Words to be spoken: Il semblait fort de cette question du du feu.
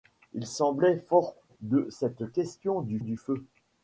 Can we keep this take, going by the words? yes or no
yes